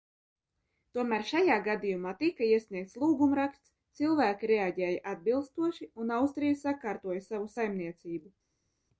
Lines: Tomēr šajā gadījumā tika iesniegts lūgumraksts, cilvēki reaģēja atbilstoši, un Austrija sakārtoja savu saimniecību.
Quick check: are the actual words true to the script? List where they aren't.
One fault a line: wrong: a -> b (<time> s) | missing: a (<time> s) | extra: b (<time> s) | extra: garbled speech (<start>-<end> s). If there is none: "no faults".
no faults